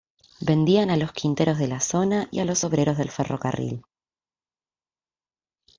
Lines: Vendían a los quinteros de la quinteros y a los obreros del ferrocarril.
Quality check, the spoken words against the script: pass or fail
fail